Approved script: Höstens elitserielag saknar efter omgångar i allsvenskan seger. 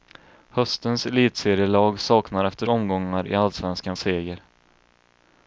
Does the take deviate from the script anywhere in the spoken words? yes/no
no